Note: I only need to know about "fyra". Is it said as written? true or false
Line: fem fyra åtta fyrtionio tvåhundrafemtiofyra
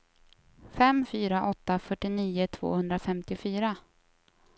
true